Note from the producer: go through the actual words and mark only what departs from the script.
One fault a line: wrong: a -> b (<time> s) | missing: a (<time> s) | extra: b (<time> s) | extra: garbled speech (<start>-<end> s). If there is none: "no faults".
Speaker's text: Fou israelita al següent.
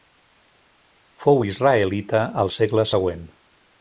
extra: segle (2.5 s)